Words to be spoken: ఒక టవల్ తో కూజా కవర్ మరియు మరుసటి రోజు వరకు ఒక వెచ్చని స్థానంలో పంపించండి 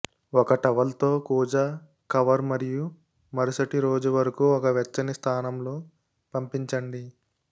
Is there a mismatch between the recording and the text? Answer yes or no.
no